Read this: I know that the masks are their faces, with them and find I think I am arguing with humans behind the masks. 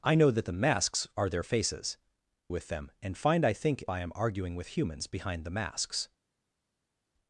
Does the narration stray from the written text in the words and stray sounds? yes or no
no